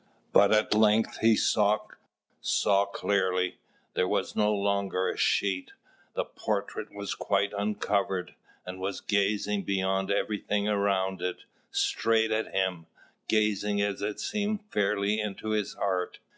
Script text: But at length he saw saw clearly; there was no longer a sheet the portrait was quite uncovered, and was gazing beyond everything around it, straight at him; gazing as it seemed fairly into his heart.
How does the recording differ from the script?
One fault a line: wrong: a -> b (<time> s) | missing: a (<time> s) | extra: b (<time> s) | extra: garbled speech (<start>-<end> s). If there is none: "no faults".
no faults